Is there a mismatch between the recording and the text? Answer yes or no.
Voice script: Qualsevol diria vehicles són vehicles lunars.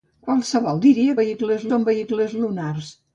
no